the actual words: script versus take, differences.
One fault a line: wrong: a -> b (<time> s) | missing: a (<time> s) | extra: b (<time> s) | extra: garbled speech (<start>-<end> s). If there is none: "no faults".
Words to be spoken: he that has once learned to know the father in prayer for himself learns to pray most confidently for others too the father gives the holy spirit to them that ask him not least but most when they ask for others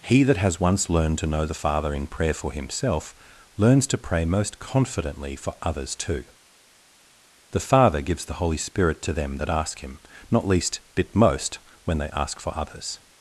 wrong: but -> bit (10.9 s)